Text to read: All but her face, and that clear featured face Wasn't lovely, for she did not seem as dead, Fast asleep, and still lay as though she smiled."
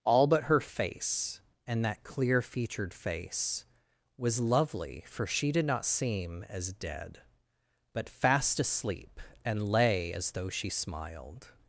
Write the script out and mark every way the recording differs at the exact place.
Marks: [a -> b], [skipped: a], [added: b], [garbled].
All but her face, and that clear featured face [Wasn't -> Was] lovely, for she did not seem as dead, [added: But] Fast asleep, and [skipped: still] lay as though she smiled."